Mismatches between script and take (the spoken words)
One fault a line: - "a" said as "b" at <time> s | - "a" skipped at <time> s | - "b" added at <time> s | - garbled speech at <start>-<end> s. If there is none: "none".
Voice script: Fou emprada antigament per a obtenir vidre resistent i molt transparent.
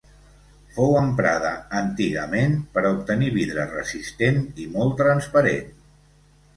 none